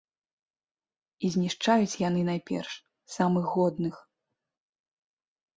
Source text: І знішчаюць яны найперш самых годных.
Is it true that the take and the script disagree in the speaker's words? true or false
false